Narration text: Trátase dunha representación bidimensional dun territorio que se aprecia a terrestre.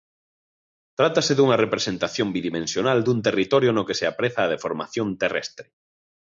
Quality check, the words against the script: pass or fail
fail